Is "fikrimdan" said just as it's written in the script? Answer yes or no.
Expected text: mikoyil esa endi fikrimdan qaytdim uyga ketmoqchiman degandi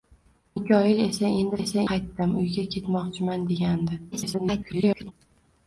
no